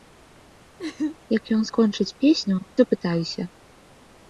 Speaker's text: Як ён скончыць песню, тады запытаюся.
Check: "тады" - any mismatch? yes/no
yes